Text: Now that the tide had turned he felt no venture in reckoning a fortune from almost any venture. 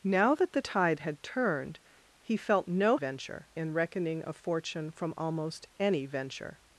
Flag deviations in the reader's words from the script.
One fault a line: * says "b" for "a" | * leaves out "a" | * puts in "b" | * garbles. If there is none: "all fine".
all fine